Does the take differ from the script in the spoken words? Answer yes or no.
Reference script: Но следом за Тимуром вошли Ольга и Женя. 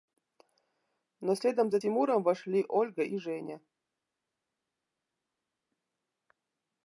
no